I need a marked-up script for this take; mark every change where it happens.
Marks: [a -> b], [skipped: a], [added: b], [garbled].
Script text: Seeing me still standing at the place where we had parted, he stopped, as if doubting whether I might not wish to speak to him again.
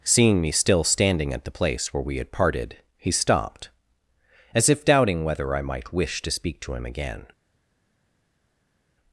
Seeing me still standing at the place where we had parted, he stopped, as if doubting whether I might [skipped: not] wish to speak to him again.